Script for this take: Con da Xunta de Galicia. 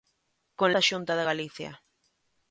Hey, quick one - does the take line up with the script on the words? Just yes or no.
yes